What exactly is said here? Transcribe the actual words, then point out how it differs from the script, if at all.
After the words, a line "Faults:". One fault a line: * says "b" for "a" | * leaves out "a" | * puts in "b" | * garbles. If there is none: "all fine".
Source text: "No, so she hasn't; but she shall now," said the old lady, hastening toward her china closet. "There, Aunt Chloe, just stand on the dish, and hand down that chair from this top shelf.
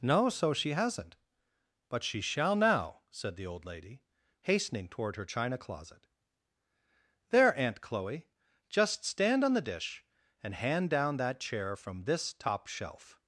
"No, so she hasn't; but she shall now," said the old lady, hastening toward her china closet. "There, Aunt Chloe, just stand on the dish, and hand down that chair from this top shelf.
Faults:
all fine